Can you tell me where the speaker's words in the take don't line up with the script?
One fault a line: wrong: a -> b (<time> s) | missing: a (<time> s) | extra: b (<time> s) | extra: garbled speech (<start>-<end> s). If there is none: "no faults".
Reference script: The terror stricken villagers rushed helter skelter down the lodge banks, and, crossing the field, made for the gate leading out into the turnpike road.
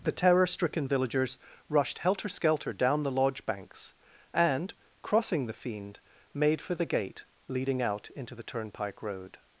wrong: field -> fiend (5.5 s)